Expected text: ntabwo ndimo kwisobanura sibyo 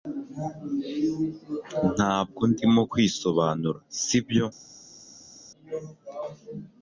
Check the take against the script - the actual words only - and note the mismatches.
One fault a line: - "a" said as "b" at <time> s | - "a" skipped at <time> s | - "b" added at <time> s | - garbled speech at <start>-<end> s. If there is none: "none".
none